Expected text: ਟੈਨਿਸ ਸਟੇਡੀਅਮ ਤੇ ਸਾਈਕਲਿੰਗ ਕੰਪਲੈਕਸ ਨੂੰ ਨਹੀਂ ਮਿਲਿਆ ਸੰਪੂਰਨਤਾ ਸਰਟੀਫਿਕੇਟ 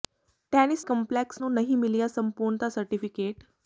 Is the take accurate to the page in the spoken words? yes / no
no